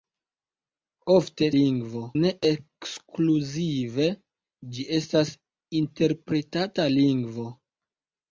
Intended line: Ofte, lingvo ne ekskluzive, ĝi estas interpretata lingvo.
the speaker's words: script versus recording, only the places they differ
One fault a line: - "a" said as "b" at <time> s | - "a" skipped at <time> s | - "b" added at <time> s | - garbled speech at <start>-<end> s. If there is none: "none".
none